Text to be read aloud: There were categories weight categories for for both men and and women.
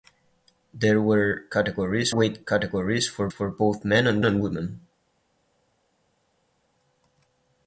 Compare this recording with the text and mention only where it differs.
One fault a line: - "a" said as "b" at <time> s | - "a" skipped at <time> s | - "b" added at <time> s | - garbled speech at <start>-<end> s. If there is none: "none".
none